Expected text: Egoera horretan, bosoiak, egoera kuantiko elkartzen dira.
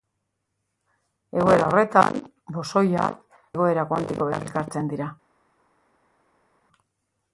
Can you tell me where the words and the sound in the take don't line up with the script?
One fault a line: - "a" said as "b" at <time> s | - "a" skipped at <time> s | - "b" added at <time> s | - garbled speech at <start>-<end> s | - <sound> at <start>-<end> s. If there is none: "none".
none